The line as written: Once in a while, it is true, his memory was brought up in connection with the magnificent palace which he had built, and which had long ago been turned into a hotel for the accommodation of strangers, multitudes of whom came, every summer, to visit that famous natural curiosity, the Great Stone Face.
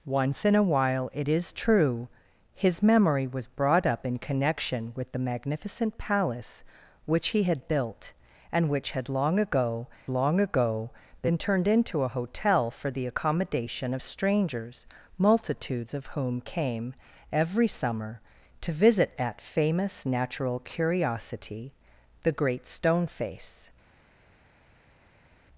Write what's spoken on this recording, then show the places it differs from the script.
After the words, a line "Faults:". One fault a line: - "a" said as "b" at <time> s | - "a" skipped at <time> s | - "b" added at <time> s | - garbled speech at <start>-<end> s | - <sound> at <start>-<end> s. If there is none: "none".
Once in a while, it is true, his memory was brought up in connection with the magnificent palace which he had built, and which had long ago long ago been turned into a hotel for the accommodation of strangers, multitudes of whom came, every summer, to visit that famous natural curiosity, the Great Stone Face.
Faults:
- "long ago" added at 10.1 s